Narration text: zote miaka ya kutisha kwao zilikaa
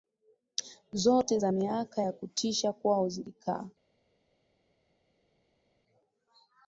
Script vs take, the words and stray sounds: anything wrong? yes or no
yes